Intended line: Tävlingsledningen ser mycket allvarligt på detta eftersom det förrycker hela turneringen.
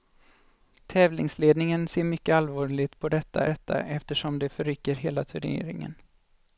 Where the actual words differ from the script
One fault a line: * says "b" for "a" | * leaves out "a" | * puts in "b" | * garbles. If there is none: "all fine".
* puts in "detta"